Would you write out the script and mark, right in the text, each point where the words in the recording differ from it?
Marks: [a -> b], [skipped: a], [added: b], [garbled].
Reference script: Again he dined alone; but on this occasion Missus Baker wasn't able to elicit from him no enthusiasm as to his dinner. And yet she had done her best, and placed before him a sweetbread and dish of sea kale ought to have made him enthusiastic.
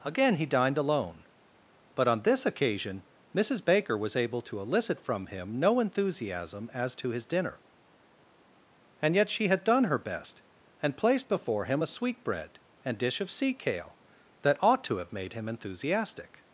Again he dined alone; but on this occasion Missus Baker [wasn't -> was] able to elicit from him no enthusiasm as to his dinner. And yet she had done her best, and placed before him a sweetbread and dish of sea kale [added: that] ought to have made him enthusiastic.